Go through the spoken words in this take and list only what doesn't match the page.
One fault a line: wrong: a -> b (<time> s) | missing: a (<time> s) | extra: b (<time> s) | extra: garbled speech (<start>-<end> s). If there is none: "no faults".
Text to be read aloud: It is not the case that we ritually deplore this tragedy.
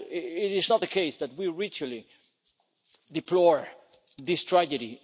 no faults